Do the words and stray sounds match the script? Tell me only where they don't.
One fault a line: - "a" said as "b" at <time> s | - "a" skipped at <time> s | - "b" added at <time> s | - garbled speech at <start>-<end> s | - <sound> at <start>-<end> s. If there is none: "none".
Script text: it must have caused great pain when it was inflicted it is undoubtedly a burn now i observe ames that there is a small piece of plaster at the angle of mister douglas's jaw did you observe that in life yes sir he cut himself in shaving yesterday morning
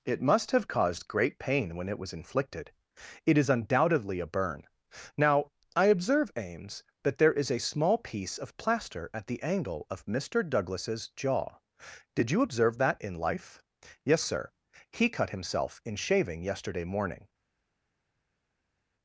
none